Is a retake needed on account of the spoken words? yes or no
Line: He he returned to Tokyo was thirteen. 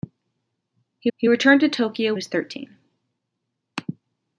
no